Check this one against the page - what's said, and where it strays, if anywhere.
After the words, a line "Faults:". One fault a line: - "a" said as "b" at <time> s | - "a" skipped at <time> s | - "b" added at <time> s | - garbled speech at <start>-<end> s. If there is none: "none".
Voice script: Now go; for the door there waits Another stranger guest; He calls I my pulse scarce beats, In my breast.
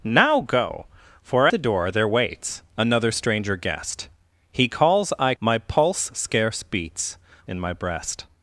Now go; for the door there waits Another stranger guest; He calls I my pulse scarce beats, In my breast.
Faults:
none